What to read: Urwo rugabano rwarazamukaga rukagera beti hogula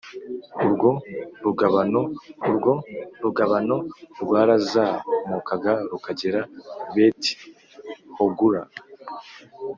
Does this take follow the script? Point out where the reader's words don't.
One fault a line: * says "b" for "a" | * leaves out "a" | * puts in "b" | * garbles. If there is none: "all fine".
* puts in "urwo rugabano"